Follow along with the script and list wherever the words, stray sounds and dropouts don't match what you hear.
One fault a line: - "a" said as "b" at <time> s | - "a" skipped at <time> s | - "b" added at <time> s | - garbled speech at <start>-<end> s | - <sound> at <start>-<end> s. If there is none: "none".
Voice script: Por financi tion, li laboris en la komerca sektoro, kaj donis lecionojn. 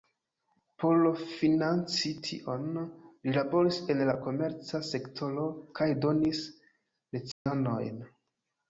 - dropout at 7.3-7.5 s